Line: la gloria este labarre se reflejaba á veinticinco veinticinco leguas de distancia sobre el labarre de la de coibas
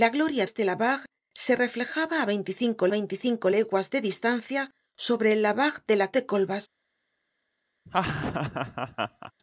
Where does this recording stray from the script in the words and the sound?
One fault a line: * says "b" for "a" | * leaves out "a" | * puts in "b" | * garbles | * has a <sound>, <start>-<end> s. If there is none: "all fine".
* has a laugh, 7.9-9.3 s